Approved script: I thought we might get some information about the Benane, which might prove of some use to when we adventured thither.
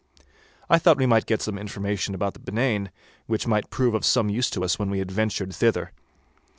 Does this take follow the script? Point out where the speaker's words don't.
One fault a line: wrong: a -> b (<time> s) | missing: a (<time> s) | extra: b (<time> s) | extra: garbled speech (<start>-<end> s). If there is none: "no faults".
extra: us (4.6 s)